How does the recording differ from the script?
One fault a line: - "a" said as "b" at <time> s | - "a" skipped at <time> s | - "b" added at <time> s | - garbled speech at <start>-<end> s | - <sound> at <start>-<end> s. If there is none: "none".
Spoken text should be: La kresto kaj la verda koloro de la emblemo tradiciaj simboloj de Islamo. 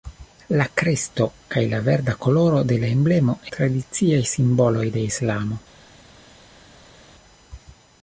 none